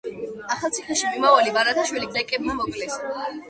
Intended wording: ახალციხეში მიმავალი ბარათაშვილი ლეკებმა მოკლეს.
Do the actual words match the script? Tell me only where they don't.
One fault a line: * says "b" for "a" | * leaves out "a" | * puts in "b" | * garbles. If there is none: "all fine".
all fine